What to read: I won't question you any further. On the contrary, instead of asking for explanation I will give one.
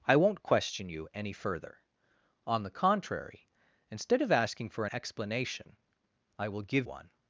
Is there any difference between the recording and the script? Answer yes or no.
no